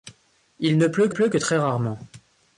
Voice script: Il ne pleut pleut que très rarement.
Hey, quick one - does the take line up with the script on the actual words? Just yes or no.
yes